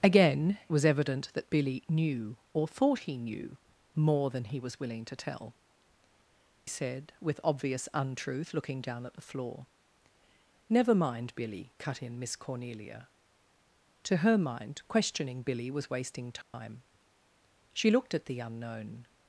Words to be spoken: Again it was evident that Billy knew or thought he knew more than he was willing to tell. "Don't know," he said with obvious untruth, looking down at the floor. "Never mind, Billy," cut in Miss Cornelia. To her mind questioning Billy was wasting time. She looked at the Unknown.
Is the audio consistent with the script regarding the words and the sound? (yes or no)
no